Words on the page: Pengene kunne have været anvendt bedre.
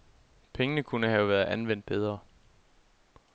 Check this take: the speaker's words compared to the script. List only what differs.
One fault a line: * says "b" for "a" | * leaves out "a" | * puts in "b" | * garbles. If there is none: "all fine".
all fine